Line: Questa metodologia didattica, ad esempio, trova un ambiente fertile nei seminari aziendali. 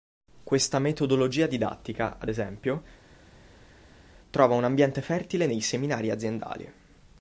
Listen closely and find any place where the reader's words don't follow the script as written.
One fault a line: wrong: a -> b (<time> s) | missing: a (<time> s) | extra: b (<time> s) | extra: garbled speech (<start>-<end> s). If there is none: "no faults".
no faults